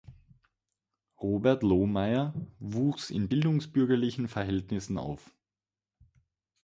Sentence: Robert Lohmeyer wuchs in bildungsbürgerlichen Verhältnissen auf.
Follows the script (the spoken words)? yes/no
yes